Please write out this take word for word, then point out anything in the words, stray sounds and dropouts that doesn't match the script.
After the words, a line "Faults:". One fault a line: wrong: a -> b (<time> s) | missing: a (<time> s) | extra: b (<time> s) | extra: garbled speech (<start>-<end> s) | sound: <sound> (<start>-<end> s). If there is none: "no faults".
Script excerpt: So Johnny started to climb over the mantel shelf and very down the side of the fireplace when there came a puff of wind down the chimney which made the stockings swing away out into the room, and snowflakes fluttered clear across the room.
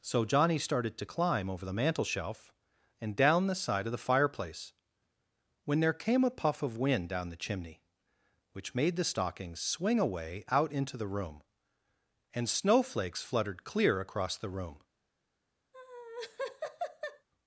So Johnny started to climb over the mantel shelf and down the side of the fireplace when there came a puff of wind down the chimney which made the stockings swing away out into the room, and snowflakes fluttered clear across the room.
Faults:
missing: very (3.2 s)
sound: laugh (15.7-17.3 s)